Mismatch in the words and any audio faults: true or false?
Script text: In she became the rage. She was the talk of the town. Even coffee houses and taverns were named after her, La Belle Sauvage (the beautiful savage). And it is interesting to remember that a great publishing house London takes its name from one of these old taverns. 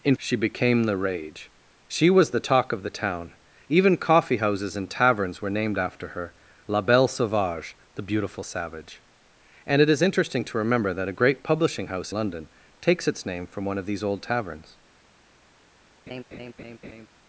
true